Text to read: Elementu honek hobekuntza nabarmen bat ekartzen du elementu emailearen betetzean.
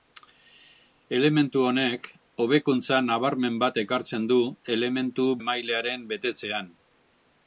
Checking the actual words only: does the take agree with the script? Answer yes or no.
yes